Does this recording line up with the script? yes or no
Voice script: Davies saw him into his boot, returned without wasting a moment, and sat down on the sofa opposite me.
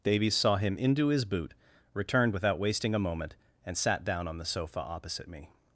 yes